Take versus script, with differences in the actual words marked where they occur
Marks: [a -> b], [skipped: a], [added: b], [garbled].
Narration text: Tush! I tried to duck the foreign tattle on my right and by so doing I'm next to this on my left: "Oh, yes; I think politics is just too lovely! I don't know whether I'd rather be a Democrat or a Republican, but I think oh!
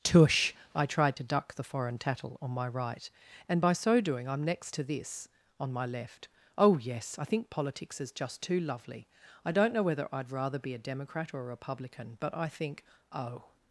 Tush! I tried to duck the foreign tattle on my right and by so doing I'm next to this on my left: "Oh, yes; I think politics is just too lovely! I don't know whether I'd rather be a Democrat or a Republican, but I think oh!